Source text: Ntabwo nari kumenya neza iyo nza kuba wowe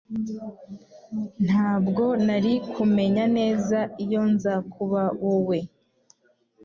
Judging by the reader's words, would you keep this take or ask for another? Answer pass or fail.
pass